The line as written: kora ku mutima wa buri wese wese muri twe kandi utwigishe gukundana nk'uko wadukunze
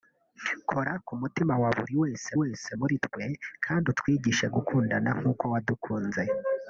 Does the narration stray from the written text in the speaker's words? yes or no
no